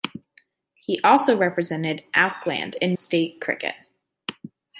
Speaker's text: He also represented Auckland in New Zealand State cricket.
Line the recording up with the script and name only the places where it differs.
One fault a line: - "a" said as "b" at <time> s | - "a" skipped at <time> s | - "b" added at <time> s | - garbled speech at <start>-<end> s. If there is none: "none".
- "New Zealand" skipped at 3.0 s